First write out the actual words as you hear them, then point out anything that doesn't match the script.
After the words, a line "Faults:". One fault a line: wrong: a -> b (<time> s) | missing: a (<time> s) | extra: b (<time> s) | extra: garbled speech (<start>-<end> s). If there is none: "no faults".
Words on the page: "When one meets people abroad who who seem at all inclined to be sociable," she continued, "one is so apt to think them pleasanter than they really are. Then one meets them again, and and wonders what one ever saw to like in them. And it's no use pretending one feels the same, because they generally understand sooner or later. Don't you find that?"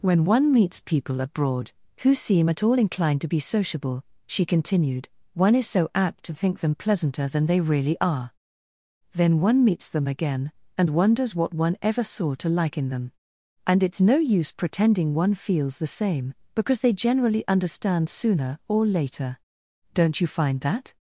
"When one meets people abroad who seem at all inclined to be sociable," she continued, "one is so apt to think them pleasanter than they really are. Then one meets them again, and wonders what one ever saw to like in them. And it's no use pretending one feels the same, because they generally understand sooner or later. Don't you find that?"
Faults:
missing: who (2.1 s)
missing: and (10.9 s)